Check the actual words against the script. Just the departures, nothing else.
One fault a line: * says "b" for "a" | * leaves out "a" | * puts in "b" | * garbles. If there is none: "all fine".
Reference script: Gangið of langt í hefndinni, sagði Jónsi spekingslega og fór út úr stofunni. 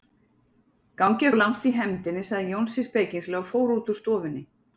all fine